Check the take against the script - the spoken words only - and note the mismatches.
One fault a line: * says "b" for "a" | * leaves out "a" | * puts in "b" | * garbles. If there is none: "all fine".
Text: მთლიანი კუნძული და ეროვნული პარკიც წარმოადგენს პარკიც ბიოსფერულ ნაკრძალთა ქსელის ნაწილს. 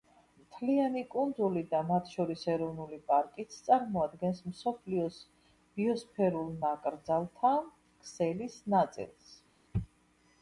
* puts in "მათ შორის"
* says "მსოფლიოს" for "პარკიც"